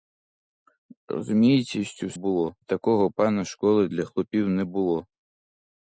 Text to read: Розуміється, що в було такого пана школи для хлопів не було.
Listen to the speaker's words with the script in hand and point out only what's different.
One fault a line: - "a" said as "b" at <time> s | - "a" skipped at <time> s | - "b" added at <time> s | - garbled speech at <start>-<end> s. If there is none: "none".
none